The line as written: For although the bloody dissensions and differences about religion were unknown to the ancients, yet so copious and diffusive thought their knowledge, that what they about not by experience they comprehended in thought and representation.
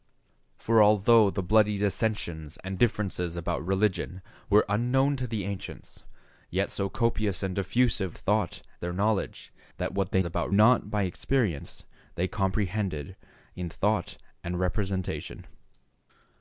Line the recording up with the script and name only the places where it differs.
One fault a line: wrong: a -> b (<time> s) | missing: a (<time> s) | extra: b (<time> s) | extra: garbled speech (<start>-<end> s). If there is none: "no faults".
no faults